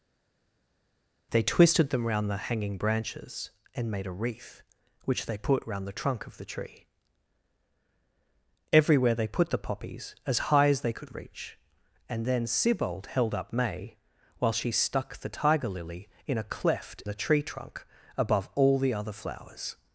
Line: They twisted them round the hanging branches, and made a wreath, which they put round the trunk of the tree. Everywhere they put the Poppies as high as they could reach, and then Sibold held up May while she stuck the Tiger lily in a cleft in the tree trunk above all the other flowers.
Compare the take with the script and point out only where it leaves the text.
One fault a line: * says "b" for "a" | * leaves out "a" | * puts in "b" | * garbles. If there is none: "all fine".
* leaves out "in"